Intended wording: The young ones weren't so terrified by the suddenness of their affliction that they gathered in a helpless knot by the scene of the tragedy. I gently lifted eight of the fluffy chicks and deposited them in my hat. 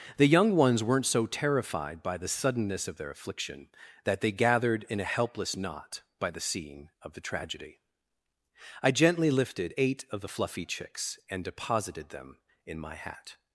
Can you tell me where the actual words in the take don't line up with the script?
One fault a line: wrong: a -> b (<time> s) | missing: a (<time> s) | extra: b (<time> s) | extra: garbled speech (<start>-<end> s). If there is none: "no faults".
no faults